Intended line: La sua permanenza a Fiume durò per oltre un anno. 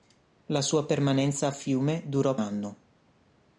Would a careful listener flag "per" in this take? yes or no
yes